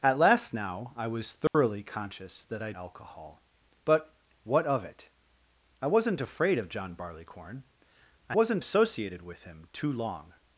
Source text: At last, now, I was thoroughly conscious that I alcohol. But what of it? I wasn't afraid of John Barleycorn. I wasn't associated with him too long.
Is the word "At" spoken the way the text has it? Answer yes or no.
yes